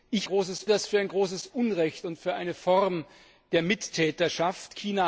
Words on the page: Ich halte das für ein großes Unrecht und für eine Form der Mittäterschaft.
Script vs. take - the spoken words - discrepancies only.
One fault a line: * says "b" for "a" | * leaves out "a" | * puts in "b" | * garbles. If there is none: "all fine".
* says "großes" for "halte"